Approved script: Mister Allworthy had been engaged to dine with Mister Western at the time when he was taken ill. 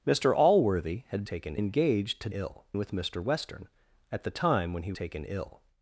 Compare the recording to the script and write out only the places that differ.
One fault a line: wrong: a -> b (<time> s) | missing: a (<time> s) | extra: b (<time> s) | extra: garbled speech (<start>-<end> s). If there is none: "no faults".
wrong: been -> taken (1.2 s)
wrong: dine -> ill (2.3 s)
missing: was (4.9 s)